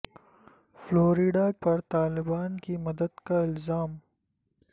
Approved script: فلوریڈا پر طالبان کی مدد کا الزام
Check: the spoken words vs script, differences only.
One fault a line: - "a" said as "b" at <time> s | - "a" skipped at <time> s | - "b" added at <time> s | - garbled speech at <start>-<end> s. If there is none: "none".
none